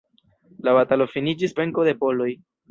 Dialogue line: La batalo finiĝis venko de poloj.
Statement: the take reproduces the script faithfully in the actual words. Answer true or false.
true